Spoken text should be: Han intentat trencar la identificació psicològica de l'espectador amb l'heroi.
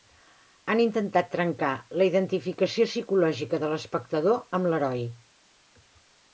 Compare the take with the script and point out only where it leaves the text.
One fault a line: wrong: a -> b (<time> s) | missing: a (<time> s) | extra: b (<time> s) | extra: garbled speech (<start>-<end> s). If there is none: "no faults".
no faults